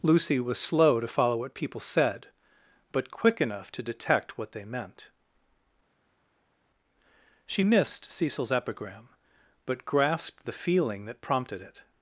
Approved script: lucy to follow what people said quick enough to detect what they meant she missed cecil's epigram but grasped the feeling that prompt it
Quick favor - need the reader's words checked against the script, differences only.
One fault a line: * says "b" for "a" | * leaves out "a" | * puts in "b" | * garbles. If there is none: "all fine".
* puts in "was slow"
* puts in "but"
* says "prompted" for "prompt"